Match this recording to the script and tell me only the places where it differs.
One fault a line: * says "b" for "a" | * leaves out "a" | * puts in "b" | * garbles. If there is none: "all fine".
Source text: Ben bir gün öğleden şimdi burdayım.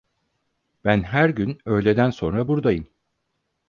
* says "her" for "bir"
* says "sonra" for "şimdi"